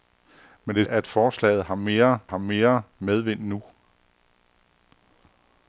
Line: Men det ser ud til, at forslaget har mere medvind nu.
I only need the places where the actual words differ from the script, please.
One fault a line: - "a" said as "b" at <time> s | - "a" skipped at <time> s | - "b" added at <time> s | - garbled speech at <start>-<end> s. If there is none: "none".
- "ser ud til at forslaget" said as "at forslaget har mere" at 0.9 s